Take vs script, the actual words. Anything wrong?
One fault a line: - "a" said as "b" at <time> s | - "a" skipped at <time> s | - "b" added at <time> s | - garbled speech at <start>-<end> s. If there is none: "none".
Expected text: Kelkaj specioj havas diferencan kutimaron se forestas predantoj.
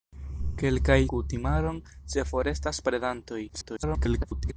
- "specioj havas diferencan" skipped at 1.0 s
- garbled speech at 3.5-4.5 s